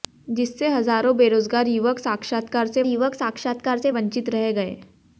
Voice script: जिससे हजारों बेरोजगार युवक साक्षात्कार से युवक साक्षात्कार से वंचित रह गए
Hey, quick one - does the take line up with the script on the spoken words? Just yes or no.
yes